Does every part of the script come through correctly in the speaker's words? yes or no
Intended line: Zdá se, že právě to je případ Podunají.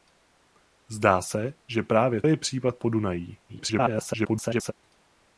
no